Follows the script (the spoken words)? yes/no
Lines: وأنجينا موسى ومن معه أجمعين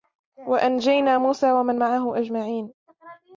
yes